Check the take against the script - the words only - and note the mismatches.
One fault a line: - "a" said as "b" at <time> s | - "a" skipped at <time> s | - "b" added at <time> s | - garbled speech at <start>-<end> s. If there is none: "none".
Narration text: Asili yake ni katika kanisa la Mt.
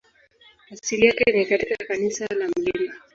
none